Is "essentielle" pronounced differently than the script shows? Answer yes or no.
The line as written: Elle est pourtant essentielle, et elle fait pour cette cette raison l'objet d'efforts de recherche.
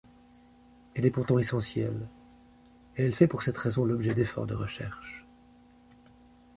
no